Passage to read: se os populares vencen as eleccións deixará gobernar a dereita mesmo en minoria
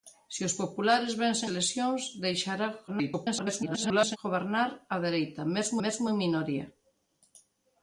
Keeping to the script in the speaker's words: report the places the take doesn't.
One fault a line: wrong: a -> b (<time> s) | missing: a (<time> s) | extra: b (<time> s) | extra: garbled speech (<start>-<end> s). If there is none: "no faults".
missing: as (1.5 s)
extra: garbled speech (2.9-4.2 s)
extra: mesmo (5.8 s)